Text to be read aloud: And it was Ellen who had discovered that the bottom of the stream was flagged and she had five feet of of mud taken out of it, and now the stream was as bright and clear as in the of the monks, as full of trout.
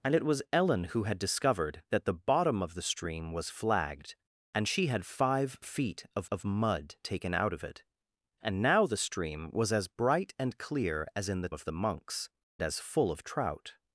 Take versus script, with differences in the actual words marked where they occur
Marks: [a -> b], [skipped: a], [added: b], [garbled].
And it was Ellen who had discovered that the bottom of the stream was flagged and she had five feet of of mud taken out of it, and now the stream was as bright and clear as in the of the monks, as full of trout.